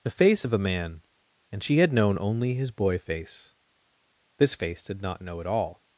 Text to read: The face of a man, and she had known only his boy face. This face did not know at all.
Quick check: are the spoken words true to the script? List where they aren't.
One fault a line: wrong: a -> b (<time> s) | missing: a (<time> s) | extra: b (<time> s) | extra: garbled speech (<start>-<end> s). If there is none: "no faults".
no faults